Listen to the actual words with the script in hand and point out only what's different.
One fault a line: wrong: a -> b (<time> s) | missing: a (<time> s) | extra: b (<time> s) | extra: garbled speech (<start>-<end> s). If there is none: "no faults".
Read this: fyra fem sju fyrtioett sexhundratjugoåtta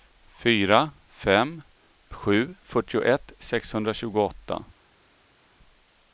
no faults